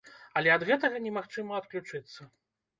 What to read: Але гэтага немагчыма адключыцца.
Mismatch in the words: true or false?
true